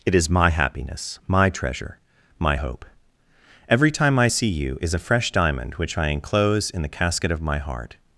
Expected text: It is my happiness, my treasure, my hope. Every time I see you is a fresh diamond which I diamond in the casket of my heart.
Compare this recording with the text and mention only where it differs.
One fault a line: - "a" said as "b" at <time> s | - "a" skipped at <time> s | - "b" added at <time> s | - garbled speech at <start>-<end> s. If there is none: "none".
- "diamond" said as "enclose" at 6.1 s